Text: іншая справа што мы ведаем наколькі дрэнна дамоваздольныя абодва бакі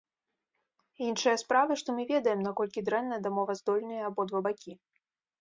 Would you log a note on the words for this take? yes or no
no